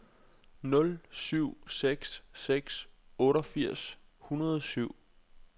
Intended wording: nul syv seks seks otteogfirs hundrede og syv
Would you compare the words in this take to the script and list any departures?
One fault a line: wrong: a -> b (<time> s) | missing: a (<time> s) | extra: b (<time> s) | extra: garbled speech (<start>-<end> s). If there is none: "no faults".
no faults